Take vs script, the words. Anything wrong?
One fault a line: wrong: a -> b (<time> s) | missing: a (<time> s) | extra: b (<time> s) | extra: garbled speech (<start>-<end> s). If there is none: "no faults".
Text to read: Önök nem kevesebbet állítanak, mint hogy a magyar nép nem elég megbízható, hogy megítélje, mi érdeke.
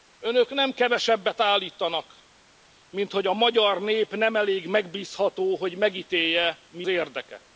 no faults